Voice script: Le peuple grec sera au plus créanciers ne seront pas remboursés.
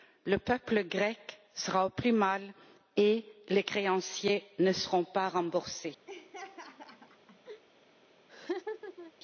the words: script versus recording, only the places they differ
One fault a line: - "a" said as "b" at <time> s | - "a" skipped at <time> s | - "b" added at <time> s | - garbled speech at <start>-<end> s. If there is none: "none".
- "mal et les" added at 2.1 s